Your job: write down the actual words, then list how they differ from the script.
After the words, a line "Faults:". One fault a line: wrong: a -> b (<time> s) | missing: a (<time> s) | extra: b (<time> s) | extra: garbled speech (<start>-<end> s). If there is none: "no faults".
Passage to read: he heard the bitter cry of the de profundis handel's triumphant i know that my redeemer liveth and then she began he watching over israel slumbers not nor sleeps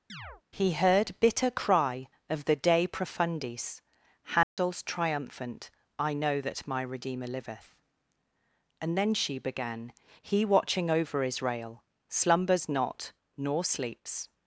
he heard bitter cry of the de profundis handel's triumphant i know that my redeemer liveth and then she began he watching over israel slumbers not nor sleeps
Faults:
missing: the (1.2 s)